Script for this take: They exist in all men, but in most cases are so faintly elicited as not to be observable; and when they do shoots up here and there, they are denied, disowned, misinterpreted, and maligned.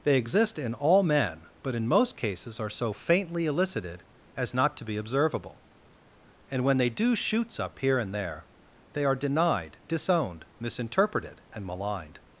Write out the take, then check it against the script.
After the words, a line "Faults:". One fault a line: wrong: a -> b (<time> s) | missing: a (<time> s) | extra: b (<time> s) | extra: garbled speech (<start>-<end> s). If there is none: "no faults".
They exist in all men, but in most cases are so faintly elicited as not to be observable; and when they do shoots up here and there, they are denied, disowned, misinterpreted, and maligned.
Faults:
no faults